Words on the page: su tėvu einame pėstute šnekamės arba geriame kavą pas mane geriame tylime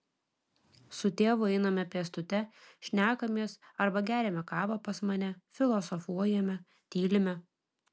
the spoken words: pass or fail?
fail